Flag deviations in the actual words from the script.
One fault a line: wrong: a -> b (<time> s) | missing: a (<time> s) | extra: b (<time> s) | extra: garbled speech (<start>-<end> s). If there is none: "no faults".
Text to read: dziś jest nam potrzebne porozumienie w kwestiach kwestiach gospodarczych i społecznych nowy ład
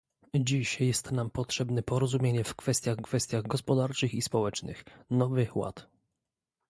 no faults